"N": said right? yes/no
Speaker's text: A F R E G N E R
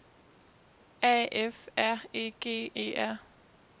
no